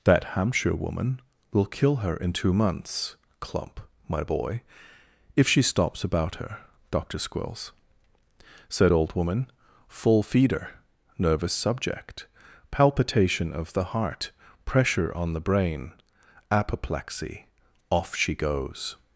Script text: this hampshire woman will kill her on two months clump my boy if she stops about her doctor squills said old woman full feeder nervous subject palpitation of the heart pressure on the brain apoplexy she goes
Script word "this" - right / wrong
wrong